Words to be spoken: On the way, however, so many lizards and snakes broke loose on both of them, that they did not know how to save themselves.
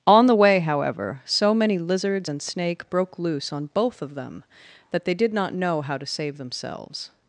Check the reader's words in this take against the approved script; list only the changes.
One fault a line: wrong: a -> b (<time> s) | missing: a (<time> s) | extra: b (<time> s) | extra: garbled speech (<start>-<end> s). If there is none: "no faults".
wrong: snakes -> snake (2.4 s)